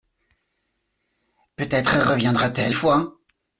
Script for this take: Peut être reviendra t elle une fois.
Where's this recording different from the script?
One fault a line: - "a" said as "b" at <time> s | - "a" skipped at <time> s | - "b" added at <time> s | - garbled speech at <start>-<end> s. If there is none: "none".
- "une" skipped at 2.7 s